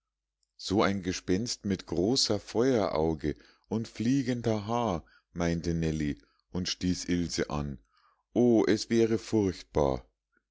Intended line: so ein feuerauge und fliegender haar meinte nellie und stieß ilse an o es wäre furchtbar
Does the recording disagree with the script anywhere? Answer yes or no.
yes